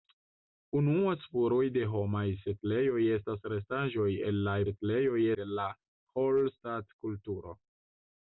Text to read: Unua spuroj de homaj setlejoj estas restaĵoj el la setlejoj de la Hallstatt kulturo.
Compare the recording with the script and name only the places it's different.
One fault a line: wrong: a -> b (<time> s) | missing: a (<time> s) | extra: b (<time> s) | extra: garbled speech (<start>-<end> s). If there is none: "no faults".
no faults